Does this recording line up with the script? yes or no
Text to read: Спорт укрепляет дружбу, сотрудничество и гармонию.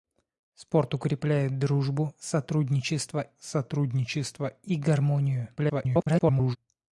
no